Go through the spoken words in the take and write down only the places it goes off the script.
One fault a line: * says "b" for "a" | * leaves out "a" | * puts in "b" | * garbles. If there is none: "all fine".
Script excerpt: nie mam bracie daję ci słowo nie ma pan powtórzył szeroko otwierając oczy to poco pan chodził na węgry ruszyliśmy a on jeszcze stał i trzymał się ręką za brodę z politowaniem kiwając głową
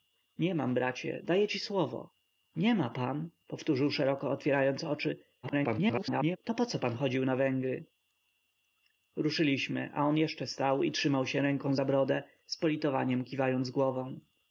* garbles